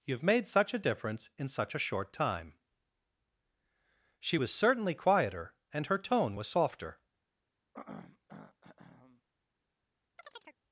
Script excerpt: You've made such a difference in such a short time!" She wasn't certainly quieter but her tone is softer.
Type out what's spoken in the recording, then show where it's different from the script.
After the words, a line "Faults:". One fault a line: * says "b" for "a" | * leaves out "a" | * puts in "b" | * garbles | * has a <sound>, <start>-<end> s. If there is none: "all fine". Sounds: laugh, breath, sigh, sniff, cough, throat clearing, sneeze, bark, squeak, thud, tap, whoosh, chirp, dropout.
You've made such a difference in such a short time!" She was certainly quieter and her tone was softer.
Faults:
* says "was" for "wasn't"
* says "and" for "but"
* says "was" for "is"
* has a throat clearing, 7.7-9.2 s
* has a chirp, 10.2-10.6 s